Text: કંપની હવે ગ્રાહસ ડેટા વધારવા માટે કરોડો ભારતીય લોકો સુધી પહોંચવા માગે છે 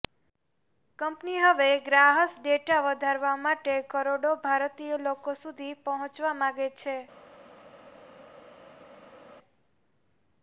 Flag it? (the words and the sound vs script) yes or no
no